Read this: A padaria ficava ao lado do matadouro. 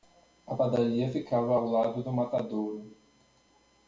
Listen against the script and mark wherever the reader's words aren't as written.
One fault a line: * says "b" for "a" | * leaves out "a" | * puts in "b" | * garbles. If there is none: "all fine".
all fine